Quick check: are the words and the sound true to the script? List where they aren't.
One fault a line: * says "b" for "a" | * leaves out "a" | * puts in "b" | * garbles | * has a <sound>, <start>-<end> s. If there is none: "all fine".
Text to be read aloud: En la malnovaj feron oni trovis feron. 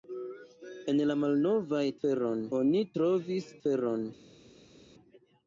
all fine